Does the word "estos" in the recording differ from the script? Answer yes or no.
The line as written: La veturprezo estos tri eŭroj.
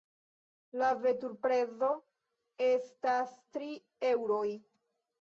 yes